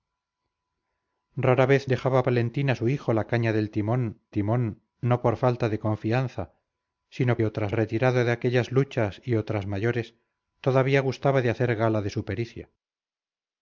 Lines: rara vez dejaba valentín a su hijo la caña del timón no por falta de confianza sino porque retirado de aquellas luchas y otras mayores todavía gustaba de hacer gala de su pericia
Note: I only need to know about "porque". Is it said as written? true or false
false